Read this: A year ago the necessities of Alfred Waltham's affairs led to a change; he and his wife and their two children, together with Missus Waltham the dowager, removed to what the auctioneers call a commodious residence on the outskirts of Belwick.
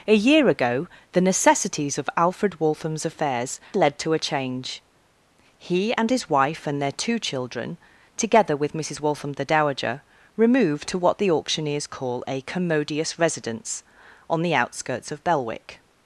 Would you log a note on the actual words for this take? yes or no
no